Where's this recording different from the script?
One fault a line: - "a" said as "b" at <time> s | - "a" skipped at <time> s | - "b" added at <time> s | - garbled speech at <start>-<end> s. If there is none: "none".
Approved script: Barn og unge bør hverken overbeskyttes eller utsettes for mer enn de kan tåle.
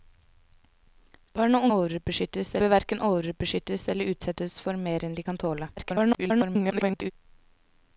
- "unge" said as "overbeskyttes" at 1.7 s
- garbled speech at 5.8-7.1 s